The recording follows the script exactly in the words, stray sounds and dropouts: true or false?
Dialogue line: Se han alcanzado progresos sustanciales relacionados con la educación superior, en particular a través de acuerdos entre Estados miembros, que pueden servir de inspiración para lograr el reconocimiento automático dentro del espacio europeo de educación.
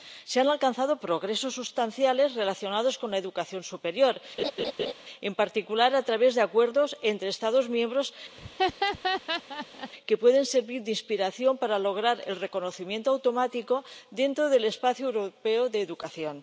false